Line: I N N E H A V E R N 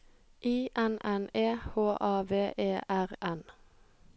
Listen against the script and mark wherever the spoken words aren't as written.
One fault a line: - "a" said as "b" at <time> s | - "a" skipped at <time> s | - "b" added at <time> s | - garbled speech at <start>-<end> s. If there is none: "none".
none